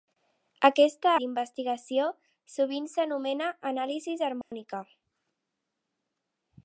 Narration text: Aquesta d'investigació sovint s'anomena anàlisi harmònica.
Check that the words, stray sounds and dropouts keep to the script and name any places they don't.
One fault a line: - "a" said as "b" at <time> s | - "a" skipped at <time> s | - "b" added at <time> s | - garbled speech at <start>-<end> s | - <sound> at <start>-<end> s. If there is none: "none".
- dropout at 4.4-4.5 s